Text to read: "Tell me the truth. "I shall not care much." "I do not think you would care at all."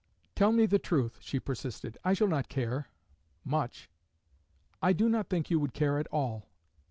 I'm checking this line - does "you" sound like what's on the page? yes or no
yes